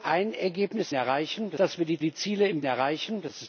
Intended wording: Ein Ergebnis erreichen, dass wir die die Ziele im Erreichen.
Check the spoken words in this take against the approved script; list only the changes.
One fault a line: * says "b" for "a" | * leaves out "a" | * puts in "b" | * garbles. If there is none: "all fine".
all fine